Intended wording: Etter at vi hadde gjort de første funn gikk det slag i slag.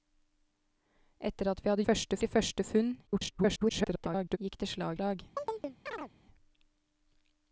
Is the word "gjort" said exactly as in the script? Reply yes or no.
no